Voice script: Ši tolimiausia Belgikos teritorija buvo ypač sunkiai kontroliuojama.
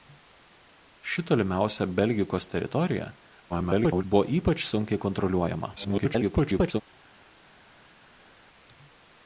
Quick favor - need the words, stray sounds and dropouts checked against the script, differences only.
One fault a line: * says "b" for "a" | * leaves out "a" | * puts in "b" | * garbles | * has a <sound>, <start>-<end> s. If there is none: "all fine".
* garbles
* garbles